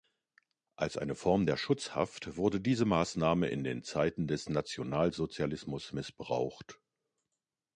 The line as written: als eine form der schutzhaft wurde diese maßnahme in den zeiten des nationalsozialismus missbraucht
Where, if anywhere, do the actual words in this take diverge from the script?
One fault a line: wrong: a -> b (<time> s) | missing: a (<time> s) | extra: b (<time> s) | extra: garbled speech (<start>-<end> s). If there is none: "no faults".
no faults